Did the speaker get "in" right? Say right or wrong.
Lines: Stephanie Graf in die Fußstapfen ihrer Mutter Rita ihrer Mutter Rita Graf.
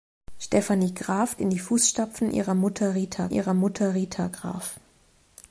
right